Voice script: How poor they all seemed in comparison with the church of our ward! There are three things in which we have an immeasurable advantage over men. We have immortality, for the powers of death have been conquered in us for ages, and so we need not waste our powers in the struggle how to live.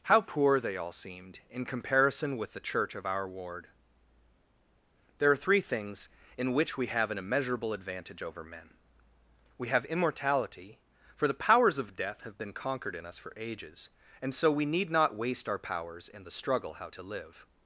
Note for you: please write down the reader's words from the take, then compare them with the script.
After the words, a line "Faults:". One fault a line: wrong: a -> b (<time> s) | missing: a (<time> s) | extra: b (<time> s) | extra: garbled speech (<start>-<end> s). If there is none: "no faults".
How poor they all seemed in comparison with the church of our ward! There are three things in which we have an immeasurable advantage over men. We have immortality, for the powers of death have been conquered in us for ages, and so we need not waste our powers in the struggle how to live.
Faults:
no faults